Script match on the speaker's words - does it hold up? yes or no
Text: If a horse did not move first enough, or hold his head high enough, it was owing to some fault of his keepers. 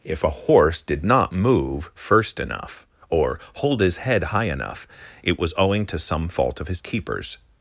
yes